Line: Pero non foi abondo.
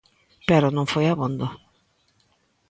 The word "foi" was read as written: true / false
true